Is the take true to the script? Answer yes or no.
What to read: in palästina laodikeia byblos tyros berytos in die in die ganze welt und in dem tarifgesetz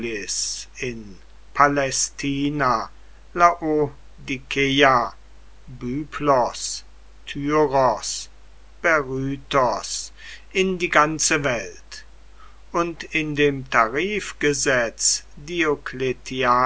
no